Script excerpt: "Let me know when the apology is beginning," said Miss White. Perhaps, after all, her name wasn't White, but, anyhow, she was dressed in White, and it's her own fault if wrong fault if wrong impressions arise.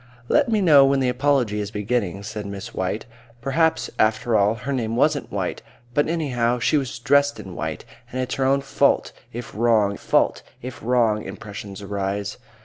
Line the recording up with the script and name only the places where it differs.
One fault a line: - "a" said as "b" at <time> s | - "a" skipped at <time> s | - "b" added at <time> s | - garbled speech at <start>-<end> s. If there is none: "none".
none